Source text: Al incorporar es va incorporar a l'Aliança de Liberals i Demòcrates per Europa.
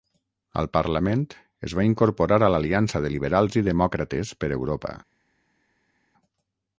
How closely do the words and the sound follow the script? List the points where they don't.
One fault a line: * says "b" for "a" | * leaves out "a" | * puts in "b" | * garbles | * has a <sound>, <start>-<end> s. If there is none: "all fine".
* says "parlament" for "incorporar"